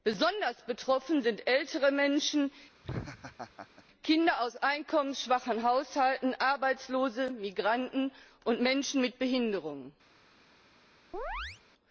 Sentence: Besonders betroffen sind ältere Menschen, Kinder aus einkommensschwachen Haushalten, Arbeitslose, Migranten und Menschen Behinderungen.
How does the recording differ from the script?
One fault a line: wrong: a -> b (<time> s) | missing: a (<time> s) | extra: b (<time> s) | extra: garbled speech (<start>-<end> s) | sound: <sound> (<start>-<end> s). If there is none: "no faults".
sound: laugh (2.8-3.8 s)
extra: mit (9.0 s)
sound: chirp (11.1-11.6 s)